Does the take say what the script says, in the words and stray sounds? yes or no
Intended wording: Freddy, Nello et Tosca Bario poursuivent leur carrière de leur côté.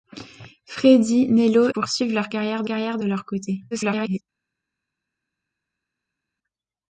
no